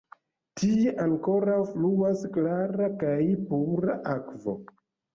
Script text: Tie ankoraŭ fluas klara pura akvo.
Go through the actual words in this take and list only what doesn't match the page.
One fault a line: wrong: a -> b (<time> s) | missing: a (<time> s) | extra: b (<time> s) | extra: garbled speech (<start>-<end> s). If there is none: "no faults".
extra: kaj (3.0 s)